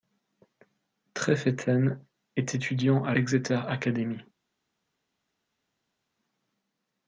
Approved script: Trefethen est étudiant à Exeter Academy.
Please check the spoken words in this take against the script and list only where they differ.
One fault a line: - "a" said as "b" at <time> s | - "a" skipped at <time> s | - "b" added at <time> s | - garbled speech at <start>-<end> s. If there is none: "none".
none